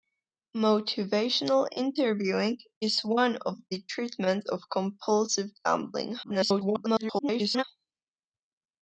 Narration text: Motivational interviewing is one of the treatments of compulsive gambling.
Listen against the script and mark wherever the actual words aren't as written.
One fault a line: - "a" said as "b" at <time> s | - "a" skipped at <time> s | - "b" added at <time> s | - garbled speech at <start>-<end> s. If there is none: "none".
- garbled speech at 6.2-7.6 s